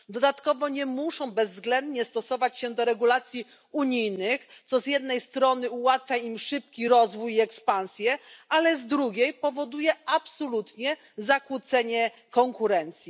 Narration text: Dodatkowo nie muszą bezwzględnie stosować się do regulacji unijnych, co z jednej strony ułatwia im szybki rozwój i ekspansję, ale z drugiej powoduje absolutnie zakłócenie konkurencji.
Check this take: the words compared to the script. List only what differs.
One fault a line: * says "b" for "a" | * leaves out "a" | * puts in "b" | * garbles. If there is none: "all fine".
all fine